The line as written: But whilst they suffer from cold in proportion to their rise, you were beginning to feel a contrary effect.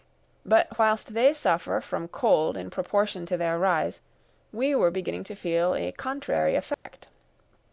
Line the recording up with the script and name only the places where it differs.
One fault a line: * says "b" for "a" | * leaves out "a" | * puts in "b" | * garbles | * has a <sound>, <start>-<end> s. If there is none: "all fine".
* says "we" for "you"
* has a dropout, 6.7-6.9 s